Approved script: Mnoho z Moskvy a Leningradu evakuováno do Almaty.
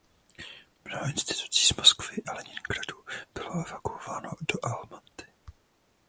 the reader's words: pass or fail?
fail